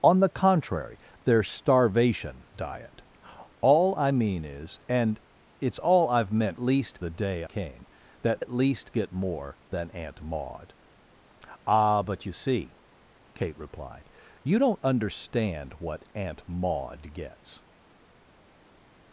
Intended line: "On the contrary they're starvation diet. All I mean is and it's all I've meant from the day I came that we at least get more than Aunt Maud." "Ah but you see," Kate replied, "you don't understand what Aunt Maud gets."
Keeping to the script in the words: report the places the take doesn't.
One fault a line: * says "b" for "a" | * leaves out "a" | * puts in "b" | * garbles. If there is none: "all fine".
* says "least" for "from"
* leaves out "I"
* leaves out "we"